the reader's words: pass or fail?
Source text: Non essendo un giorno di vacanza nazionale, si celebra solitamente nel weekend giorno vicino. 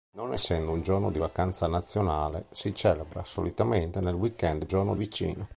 pass